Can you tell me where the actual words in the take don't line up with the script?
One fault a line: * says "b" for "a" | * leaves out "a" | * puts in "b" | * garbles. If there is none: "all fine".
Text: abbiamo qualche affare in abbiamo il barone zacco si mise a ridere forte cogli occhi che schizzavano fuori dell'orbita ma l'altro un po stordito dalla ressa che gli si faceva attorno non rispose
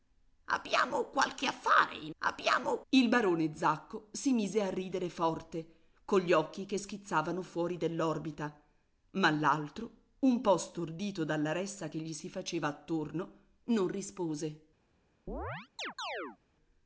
all fine